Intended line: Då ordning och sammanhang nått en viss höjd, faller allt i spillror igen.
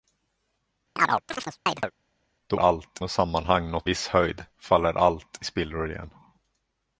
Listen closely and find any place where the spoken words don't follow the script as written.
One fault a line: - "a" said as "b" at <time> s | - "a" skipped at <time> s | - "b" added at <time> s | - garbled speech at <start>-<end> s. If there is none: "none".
- "ordning" said as "allt" at 2.6 s
- "en" skipped at 3.9 s